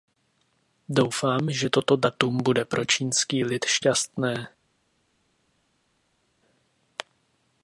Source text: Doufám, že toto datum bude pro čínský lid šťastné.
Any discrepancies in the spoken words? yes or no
no